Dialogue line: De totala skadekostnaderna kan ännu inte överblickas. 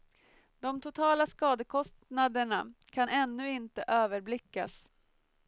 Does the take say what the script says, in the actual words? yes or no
yes